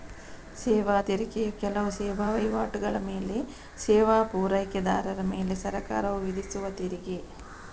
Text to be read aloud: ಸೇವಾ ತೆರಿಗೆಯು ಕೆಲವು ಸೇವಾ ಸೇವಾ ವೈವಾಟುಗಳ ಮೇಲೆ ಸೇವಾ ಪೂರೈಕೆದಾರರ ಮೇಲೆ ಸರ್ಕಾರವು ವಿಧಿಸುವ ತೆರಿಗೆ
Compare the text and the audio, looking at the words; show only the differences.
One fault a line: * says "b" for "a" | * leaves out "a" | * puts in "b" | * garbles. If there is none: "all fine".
* leaves out "ಸೇವಾ"